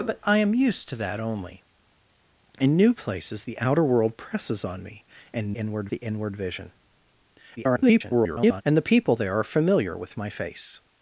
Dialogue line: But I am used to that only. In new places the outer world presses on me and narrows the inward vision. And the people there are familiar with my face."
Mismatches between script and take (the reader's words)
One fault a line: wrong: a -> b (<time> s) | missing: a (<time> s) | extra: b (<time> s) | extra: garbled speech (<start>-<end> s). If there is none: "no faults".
wrong: narrows -> inward (5.5 s)
extra: garbled speech (7.6-8.6 s)